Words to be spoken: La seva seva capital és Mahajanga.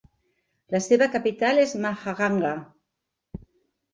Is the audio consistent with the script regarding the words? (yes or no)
no